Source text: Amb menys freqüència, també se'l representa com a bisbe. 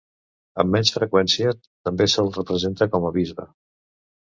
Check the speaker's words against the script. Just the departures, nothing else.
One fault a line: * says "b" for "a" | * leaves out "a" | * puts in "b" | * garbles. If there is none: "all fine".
all fine